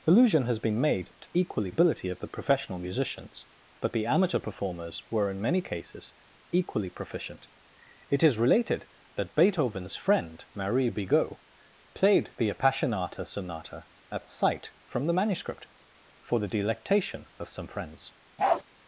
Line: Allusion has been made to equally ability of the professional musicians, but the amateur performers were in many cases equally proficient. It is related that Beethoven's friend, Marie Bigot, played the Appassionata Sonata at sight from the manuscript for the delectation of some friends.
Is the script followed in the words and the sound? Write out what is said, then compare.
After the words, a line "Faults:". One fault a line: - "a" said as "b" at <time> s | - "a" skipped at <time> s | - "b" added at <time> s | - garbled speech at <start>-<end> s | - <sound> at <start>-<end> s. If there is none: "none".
Allusion has been made to equally ability of the professional musicians, but the amateur performers were in many cases equally proficient. It is related that Beethoven's friend, Marie Bigot, played the Appassionata Sonata at sight from the manuscript for the delectation of some friends.
Faults:
- bark at 18.4-18.6 s